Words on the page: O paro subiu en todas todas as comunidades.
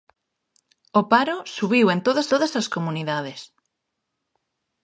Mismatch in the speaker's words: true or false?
false